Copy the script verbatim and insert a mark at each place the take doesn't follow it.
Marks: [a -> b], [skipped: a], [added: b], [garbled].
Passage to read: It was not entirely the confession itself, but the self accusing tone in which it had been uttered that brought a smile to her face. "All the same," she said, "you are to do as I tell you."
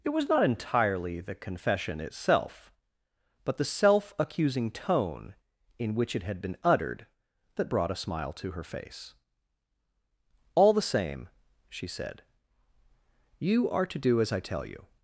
It was not entirely the confession itself, but the self accusing tone in which it had been uttered that brought a smile to her face. "All the same," she said, "you are to do as I tell you."